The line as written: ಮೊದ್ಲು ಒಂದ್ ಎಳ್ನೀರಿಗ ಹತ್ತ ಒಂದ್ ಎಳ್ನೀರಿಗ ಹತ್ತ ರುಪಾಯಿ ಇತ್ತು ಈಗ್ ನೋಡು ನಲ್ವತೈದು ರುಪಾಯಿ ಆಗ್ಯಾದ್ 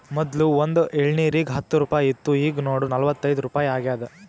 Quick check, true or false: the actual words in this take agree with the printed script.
false